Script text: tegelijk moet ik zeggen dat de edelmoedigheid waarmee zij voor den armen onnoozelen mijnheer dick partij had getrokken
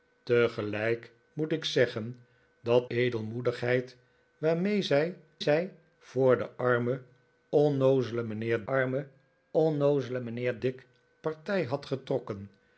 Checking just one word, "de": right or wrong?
wrong